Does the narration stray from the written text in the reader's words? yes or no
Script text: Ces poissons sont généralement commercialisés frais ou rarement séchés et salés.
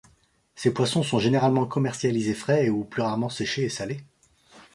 yes